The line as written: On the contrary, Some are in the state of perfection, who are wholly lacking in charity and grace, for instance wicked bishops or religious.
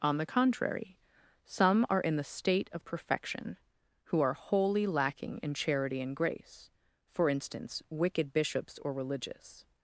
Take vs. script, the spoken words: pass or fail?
pass